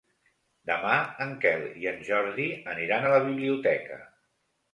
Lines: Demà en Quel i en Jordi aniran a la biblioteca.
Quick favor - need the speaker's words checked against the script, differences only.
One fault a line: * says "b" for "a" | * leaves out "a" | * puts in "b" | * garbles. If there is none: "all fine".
all fine